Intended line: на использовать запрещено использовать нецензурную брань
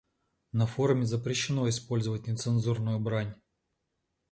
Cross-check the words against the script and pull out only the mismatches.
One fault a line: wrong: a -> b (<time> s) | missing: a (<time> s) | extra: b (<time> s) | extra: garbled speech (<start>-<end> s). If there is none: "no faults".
wrong: использовать -> форуме (0.7 s)